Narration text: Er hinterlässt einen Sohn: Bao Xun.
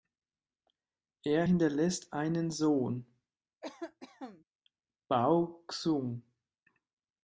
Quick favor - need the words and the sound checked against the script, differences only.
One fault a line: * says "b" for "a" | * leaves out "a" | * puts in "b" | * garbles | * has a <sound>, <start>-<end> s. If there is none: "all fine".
* has a cough, 3.6-4.4 s